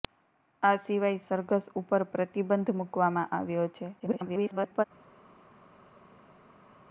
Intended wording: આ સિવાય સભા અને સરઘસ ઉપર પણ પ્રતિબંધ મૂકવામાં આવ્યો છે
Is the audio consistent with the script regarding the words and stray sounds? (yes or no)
no